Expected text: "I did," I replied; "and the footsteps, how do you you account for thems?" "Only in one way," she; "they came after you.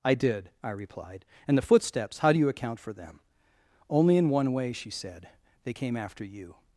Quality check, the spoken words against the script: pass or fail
fail